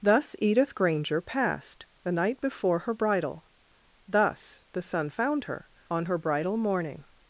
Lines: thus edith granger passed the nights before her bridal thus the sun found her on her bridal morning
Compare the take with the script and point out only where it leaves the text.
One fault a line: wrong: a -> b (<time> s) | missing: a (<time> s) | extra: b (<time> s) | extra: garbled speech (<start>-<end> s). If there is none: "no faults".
wrong: nights -> night (2.1 s)